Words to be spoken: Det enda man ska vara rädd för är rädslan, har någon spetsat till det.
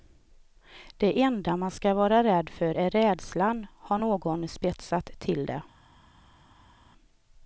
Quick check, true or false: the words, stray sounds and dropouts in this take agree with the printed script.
true